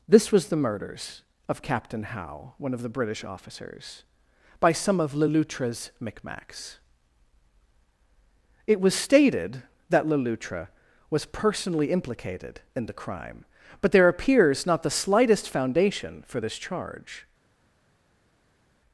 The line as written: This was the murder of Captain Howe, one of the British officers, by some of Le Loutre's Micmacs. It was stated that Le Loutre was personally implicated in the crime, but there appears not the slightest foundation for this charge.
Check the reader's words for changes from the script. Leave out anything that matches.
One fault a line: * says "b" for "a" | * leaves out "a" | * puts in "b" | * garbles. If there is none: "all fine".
* says "murders" for "murder"